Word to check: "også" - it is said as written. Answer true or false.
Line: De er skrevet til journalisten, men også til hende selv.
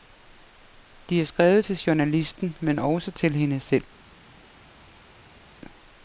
true